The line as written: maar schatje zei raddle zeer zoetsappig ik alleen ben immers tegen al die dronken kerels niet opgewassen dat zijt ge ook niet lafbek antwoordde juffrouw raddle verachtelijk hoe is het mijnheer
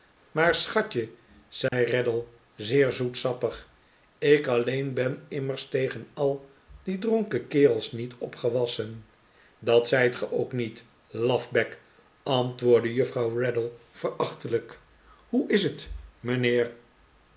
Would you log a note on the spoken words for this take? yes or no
no